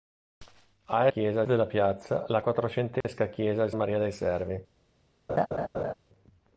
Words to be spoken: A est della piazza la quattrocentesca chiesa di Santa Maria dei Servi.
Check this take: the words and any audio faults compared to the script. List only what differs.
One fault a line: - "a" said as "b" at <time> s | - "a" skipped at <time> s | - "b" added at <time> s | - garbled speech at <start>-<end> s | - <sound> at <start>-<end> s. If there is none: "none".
- "est" said as "chiesa" at 1.1 s
- dropout at 3.0-3.0 s
- "Santa" skipped at 3.7 s
- laugh at 5.3-5.9 s